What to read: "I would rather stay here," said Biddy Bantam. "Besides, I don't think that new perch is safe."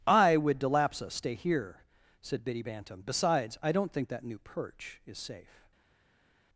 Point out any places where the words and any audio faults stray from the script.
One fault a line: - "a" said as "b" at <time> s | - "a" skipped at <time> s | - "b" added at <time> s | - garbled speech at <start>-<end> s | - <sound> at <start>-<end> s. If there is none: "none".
- "rather" said as "delapsa" at 0.6 s